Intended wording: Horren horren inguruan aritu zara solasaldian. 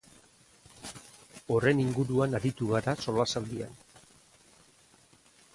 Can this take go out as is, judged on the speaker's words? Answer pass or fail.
fail